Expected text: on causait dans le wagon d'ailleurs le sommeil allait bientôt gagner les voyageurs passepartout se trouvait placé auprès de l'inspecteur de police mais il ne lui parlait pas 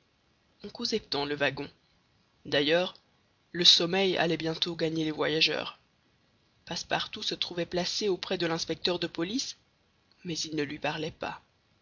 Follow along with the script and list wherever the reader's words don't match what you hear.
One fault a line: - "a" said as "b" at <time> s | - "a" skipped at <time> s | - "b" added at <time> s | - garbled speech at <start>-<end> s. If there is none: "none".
none